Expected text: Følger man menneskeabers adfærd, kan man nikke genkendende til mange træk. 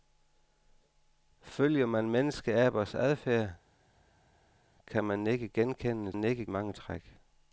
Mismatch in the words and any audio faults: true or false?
true